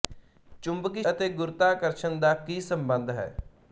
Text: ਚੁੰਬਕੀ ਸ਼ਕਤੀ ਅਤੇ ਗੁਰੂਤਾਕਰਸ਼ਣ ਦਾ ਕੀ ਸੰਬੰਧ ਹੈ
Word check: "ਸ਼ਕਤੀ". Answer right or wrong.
wrong